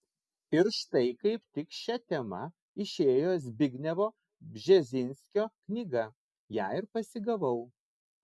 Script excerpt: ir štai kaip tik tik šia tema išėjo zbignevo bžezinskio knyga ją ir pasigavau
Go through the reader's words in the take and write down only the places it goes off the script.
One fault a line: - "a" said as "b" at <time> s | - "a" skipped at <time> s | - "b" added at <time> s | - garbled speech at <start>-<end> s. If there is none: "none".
- "tik" skipped at 1.8 s